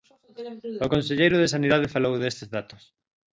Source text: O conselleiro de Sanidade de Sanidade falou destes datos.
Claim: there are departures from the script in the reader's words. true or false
true